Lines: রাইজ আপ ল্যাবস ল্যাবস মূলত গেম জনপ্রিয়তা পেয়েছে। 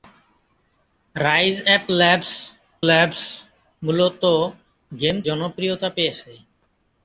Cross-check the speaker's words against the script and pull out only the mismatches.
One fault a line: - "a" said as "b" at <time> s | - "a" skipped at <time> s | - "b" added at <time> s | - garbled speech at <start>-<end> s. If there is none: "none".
none